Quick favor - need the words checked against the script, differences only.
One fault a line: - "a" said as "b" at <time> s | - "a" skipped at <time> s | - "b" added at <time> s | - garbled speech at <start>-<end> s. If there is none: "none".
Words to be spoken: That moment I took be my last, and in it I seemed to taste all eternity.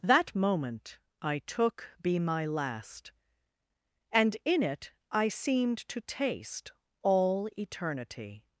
none